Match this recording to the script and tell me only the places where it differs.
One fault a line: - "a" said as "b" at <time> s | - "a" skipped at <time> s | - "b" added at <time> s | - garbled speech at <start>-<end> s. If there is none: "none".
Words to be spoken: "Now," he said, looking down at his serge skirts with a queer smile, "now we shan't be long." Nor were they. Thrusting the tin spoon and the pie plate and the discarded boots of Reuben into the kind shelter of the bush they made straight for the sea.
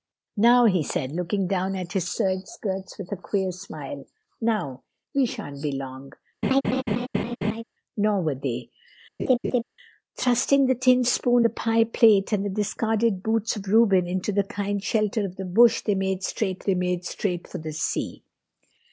- "and" skipped at 11.5 s
- "they made straight" added at 16.6 s